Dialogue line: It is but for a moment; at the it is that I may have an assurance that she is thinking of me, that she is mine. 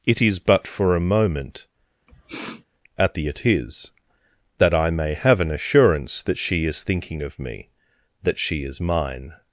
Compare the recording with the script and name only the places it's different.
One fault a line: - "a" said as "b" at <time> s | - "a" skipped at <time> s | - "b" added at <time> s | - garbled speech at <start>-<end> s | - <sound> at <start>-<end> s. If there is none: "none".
- sniff at 2.1-2.6 s